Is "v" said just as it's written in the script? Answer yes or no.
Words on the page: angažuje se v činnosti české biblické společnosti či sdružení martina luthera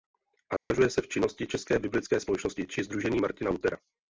yes